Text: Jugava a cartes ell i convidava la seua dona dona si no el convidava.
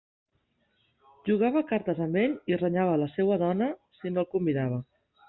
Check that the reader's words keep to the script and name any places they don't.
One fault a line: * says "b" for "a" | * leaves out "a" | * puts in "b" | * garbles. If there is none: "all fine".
* puts in "amb"
* says "renyava" for "convidava"
* leaves out "dona"